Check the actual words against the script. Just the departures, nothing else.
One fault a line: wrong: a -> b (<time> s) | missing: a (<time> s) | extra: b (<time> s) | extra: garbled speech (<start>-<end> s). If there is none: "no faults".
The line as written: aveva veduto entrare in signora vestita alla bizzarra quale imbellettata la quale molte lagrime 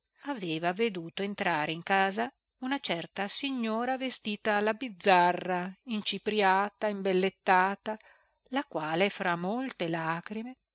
extra: casa una certa (1.8 s)
wrong: quale -> incipriata (5.8 s)
extra: fra (9.1 s)